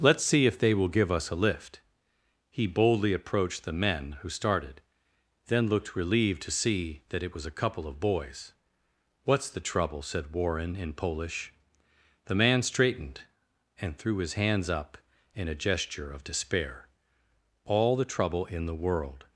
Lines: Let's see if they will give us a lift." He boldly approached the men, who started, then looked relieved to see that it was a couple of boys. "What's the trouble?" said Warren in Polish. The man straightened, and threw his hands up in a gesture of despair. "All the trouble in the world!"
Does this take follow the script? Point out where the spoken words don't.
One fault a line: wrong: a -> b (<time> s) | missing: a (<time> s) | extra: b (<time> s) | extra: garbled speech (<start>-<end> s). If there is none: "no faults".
no faults